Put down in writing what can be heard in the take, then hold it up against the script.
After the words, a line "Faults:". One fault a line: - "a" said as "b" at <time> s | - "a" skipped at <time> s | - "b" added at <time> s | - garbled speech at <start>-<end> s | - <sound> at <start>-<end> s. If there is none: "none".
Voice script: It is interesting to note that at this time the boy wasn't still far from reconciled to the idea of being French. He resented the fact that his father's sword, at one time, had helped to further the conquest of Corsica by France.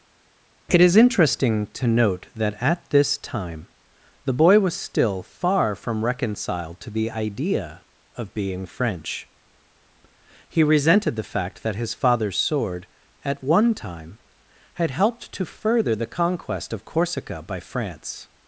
It is interesting to note that at this time the boy was still far from reconciled to the idea of being French. He resented the fact that his father's sword, at one time, had helped to further the conquest of Corsica by France.
Faults:
- "wasn't" said as "was" at 4.6 s